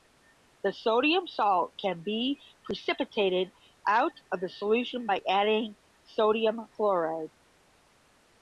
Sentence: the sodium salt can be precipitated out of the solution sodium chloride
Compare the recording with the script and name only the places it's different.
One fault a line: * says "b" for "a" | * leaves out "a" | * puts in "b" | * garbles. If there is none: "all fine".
* puts in "by adding"